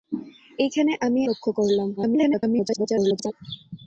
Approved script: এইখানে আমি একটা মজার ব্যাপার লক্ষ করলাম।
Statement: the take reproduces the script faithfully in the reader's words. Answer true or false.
false